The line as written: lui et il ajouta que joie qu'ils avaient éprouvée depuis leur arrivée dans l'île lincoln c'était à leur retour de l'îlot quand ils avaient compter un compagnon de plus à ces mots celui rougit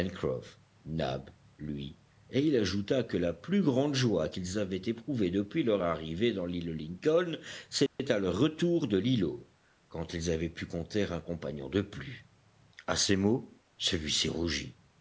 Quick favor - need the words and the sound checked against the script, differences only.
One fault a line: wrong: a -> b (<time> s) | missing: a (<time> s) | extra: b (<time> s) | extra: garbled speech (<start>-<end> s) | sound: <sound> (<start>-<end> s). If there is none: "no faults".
extra: la plus grande (3.2 s)
sound: dropout (7.9-8.0 s)
extra: pu (10.5 s)
extra: ci (14.1 s)